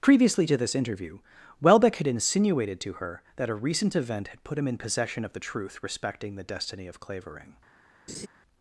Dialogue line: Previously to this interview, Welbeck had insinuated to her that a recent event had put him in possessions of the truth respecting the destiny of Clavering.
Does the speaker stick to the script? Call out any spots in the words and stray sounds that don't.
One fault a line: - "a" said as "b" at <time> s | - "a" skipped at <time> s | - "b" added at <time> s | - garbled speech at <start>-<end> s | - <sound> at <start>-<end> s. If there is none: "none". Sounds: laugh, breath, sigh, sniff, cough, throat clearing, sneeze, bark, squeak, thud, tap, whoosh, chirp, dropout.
- "possessions" said as "possession" at 4.8 s
- laugh at 8.1-8.3 s